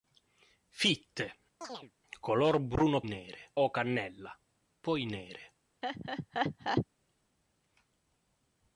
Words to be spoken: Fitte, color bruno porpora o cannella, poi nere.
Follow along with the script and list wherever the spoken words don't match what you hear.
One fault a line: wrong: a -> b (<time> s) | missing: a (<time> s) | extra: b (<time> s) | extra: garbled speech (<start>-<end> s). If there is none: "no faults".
wrong: porpora -> nere (3.0 s)